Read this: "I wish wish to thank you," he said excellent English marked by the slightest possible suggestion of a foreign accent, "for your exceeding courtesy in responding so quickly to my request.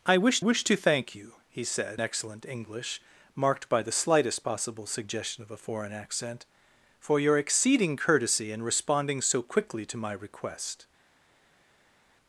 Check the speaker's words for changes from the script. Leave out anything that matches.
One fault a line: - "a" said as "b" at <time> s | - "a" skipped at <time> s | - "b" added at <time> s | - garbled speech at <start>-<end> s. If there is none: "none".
none